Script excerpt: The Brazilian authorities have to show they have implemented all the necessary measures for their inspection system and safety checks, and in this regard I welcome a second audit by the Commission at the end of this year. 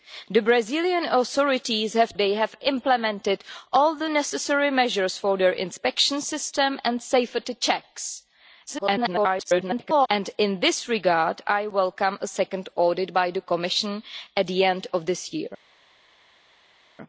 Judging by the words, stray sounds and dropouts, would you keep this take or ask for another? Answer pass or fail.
fail